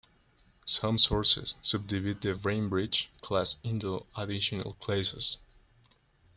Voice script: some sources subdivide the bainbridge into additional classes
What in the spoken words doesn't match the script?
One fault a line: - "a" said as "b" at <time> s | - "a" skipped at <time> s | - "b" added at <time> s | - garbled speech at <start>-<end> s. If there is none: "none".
- "class" added at 3.2 s